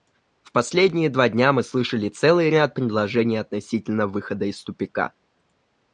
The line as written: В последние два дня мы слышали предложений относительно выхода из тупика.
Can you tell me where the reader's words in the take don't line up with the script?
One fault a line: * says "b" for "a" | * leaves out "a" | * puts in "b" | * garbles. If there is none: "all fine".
* puts in "целый ряд"